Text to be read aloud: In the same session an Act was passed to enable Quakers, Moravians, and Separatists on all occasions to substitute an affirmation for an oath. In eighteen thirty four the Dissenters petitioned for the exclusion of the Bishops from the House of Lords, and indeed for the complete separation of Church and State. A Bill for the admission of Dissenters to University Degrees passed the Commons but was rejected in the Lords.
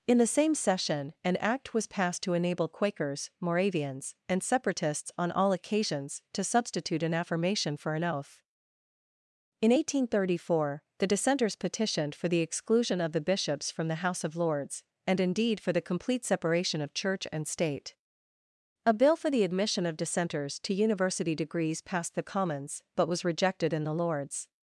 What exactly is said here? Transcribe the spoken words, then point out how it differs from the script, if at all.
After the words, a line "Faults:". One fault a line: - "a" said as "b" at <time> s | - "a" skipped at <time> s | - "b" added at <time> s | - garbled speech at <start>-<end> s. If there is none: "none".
In the same session an Act was passed to enable Quakers, Moravians, and Separatists on all occasions to substitute an affirmation for an oath. In eighteen thirty four the Dissenters petitioned for the exclusion of the Bishops from the House of Lords, and indeed for the complete separation of Church and State. A Bill for the admission of Dissenters to University Degrees passed the Commons but was rejected in the Lords.
Faults:
none